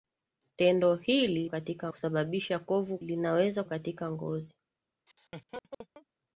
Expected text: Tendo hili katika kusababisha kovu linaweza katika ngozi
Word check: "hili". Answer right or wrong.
right